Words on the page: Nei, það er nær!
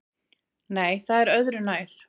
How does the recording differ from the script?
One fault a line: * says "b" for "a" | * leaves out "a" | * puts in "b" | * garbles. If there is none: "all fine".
* puts in "öðru"